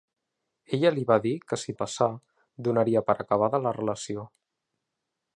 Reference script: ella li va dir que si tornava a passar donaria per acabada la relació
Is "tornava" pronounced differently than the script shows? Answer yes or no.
yes